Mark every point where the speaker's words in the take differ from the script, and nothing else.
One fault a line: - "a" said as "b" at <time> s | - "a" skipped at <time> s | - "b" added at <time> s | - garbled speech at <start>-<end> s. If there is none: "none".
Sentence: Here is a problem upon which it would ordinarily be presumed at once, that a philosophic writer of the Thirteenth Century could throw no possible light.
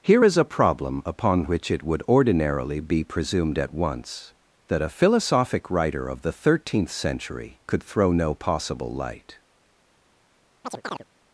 none